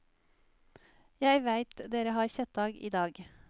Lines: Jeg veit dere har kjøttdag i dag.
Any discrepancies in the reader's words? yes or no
no